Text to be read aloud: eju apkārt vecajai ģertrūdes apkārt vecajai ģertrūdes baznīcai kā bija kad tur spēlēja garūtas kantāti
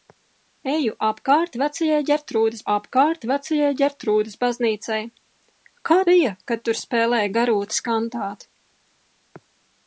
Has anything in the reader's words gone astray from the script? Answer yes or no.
no